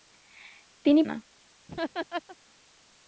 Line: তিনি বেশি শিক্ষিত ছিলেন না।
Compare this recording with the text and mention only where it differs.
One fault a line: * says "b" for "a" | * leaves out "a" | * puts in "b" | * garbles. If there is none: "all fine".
* leaves out "বেশি শিক্ষিত ছিলেন"